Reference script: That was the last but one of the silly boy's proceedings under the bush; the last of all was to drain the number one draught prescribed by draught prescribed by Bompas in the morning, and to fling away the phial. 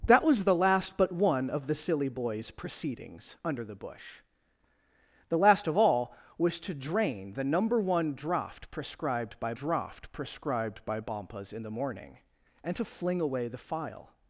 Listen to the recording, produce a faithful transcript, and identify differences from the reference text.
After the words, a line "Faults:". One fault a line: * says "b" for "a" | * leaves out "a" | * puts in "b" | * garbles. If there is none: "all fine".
That was the last but one of the silly boy's proceedings under the bush; the last of all was to drain the number one draught prescribed by draught prescribed by Bompas in the morning, and to fling away the phial.
Faults:
all fine